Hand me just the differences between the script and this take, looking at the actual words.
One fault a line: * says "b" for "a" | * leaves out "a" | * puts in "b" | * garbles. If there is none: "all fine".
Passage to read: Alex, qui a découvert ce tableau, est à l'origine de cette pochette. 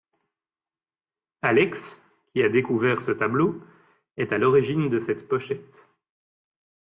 all fine